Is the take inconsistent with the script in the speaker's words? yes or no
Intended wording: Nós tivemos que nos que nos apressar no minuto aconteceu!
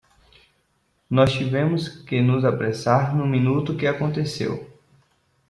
yes